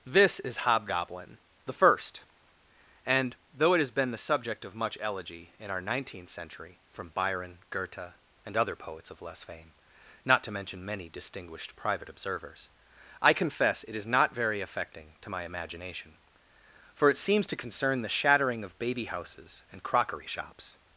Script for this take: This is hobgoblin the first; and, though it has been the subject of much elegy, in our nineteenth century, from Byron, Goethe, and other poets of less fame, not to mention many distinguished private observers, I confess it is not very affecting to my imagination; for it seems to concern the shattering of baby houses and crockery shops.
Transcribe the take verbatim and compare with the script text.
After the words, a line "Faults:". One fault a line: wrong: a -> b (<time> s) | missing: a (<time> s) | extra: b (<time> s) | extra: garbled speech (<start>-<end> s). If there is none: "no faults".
This is hobgoblin the first; and, though it has been the subject of much elegy, in our nineteenth century, from Byron, Goethe, and other poets of less fame, not to mention many distinguished private observers, I confess it is not very affecting to my imagination; for it seems to concern the shattering of baby houses and crockery shops.
Faults:
no faults